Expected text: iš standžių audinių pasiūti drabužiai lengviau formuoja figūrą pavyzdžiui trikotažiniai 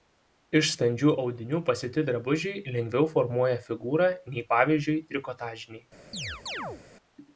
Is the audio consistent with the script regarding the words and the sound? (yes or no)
no